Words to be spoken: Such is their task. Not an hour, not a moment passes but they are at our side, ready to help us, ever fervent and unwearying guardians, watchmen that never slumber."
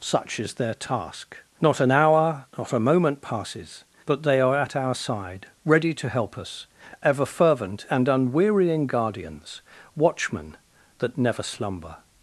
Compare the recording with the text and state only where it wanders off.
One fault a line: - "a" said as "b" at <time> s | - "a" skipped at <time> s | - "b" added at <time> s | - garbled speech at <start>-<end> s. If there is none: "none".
none